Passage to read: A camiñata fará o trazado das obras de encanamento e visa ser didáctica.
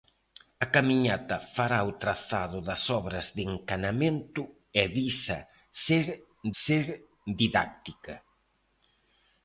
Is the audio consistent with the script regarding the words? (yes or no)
no